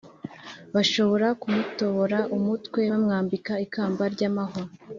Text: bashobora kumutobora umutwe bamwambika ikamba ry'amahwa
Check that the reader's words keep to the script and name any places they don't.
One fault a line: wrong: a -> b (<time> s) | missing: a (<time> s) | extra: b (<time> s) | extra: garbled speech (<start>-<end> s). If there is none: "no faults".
no faults